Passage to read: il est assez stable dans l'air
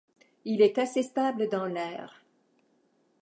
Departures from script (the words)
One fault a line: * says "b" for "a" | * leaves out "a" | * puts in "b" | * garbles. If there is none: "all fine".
all fine